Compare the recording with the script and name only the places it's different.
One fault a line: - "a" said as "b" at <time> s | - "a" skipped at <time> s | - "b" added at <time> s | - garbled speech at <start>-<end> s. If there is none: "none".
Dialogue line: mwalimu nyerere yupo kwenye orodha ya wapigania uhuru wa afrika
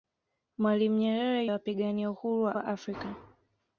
- "yupo kwenye orodha" skipped at 1.4 s
- "wa" added at 2.5 s